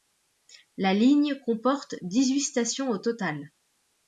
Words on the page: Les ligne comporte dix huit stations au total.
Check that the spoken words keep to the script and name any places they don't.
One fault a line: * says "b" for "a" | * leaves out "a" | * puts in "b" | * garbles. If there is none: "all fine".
* says "La" for "Les"